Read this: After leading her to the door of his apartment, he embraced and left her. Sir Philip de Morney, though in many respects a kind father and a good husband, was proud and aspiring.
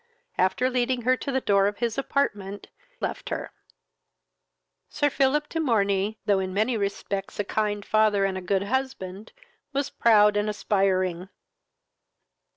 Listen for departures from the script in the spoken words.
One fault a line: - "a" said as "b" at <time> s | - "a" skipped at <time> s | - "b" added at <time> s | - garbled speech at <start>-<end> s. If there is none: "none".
- "he embraced and" skipped at 2.6 s